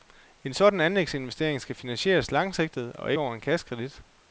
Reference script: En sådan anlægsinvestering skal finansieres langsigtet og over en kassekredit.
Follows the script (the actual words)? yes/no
yes